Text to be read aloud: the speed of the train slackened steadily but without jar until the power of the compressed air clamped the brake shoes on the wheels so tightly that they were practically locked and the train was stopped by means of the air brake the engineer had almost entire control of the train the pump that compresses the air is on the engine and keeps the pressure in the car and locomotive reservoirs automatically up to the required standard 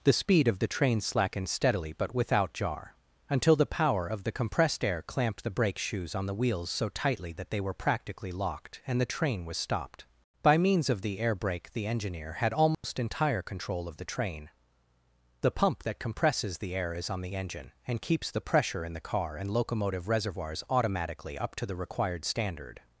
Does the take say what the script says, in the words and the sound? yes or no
no